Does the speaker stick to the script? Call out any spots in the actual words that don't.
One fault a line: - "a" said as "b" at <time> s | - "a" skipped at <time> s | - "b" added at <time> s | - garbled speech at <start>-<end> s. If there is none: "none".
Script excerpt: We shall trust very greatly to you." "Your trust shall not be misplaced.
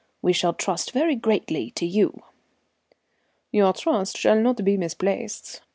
none